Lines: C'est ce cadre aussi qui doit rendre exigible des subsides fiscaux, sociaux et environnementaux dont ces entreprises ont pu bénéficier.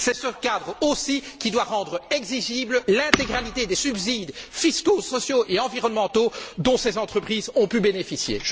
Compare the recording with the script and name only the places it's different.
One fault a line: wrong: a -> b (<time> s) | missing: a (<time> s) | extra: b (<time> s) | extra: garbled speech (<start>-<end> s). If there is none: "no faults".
extra: l'intégralité (2.9 s)